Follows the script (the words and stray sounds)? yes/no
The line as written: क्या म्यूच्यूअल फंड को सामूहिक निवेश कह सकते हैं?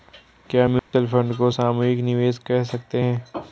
no